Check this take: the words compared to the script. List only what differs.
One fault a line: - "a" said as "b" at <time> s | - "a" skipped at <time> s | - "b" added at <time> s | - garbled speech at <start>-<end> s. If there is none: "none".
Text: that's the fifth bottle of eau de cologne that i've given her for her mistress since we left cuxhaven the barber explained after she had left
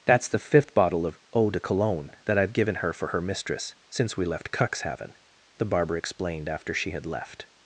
none